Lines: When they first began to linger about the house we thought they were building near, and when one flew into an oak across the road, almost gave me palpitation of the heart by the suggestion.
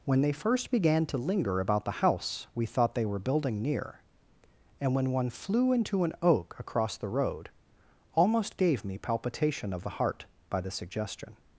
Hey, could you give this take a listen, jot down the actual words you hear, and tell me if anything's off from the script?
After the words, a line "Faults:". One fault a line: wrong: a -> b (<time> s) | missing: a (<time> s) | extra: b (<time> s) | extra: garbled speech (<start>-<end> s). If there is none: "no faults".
When they first began to linger about the house we thought they were building near, and when one flew into an oak across the road, almost gave me palpitation of the heart by the suggestion.
Faults:
no faults